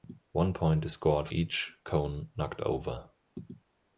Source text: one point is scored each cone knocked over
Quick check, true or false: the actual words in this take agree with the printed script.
true